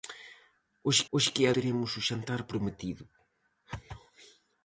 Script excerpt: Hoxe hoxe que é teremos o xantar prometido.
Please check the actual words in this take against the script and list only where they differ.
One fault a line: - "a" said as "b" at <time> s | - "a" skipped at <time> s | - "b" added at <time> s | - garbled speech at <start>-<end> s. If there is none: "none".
none